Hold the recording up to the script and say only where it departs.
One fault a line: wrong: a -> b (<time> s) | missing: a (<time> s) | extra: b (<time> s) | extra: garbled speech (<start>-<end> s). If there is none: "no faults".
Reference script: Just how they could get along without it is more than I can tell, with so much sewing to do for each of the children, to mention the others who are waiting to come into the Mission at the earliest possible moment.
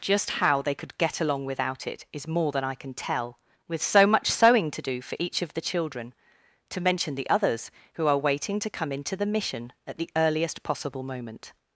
no faults